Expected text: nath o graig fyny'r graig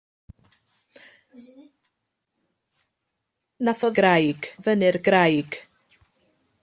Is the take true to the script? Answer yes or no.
yes